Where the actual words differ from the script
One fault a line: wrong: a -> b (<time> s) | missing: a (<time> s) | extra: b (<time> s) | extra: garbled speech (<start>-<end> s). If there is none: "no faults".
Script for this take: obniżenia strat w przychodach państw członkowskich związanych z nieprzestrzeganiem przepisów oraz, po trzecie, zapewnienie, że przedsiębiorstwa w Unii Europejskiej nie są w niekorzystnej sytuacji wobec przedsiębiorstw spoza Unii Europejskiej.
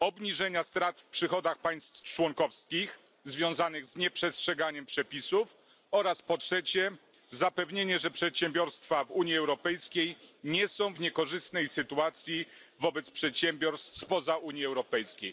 no faults